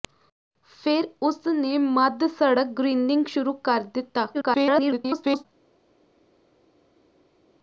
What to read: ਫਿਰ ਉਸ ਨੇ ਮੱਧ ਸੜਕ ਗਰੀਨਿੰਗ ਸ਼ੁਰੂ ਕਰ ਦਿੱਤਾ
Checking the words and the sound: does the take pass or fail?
fail